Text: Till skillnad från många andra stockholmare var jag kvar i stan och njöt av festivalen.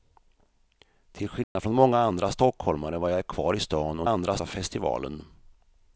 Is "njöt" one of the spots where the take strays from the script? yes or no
yes